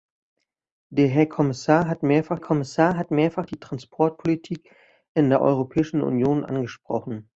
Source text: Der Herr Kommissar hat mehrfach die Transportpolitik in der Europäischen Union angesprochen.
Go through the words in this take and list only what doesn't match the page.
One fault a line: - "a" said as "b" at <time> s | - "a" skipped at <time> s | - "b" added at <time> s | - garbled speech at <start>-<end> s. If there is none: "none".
- "Kommissar hat mehrfach" added at 2.4 s